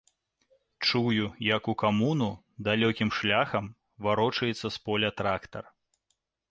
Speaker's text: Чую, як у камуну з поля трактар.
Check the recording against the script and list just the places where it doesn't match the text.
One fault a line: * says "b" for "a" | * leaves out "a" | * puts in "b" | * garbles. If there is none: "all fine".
* puts in "далёкім шляхам варочаецца"